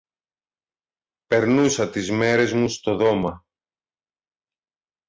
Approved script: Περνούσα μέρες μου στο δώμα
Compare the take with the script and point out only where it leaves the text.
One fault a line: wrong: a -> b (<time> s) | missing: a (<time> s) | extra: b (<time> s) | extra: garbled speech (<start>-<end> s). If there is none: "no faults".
extra: τις (1.9 s)